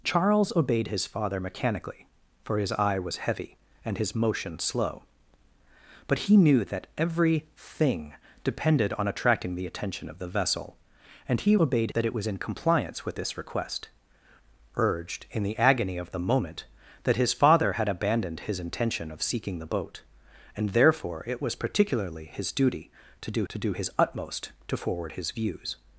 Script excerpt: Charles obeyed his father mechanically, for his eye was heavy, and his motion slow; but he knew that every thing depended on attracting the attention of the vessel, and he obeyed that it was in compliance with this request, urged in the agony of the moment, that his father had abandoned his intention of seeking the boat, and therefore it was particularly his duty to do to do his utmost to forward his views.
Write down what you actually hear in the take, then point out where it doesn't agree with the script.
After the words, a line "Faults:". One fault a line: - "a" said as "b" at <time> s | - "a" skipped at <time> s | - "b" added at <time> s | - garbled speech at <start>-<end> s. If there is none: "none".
Charles obeyed his father mechanically, for his eye was heavy, and his motion slow; but he knew that every thing depended on attracting the attention of the vessel, and he obeyed that it was in compliance with this request, urged in the agony of the moment, that his father had abandoned his intention of seeking the boat, and therefore it was particularly his duty to do to do his utmost to forward his views.
Faults:
none